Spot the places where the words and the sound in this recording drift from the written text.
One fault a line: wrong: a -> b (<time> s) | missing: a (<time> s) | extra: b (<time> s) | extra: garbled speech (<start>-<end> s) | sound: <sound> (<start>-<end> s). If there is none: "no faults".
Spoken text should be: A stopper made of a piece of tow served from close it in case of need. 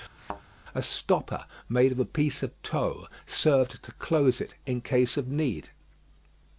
sound: thud (0.2-0.4 s)
wrong: from -> to (3.8 s)